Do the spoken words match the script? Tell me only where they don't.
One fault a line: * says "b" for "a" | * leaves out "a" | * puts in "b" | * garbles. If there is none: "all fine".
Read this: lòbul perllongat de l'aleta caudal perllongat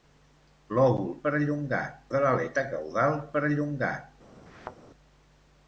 all fine